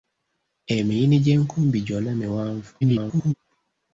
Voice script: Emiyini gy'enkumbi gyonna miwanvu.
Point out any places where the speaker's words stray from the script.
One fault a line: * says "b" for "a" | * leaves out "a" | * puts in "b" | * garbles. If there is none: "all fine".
* garbles